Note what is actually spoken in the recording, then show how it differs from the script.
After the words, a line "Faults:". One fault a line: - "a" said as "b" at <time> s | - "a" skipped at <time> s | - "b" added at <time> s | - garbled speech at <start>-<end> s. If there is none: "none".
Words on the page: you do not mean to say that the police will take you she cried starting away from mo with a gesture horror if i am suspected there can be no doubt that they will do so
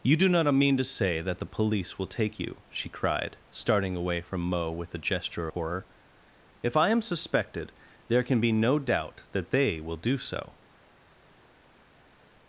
you do not mean to say that the police will take you she cried starting away from mo with a gesture horror if i am suspected there can be no doubt that they will do so
Faults:
none